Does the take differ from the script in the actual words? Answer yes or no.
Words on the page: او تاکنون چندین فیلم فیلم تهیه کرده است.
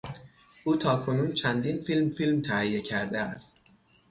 no